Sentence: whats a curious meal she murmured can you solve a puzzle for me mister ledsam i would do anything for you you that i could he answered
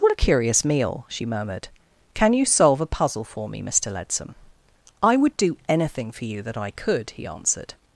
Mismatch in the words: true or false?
true